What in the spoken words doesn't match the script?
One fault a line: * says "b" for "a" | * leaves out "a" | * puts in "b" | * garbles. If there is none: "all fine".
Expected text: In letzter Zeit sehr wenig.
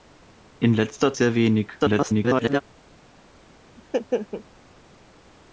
* leaves out "Zeit"
* garbles